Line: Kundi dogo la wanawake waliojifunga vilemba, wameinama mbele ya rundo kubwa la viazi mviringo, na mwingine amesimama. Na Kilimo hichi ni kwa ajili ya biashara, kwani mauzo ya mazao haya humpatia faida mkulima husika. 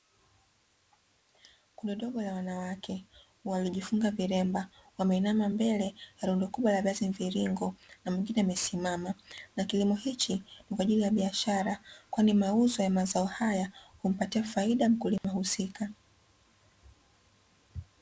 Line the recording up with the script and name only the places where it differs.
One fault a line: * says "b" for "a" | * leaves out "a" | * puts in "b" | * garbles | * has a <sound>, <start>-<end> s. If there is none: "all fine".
* has a dropout, 15.2-15.2 s